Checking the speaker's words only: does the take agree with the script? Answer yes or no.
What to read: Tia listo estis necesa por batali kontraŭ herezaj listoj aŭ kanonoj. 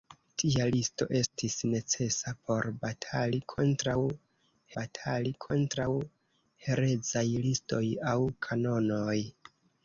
no